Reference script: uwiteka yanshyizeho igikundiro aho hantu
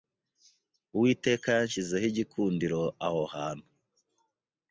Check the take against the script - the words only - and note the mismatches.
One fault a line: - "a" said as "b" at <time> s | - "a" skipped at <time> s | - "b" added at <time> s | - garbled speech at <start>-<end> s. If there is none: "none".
none